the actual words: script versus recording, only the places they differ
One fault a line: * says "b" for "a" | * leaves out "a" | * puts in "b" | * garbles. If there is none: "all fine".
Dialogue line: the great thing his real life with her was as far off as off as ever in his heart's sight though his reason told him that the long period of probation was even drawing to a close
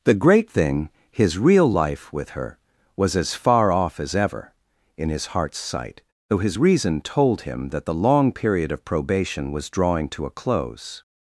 * leaves out "off as"
* leaves out "even"